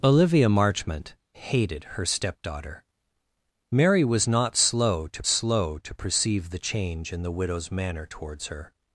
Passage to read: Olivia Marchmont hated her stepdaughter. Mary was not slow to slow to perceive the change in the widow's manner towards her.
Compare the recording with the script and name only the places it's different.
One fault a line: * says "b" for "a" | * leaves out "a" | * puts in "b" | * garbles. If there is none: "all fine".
all fine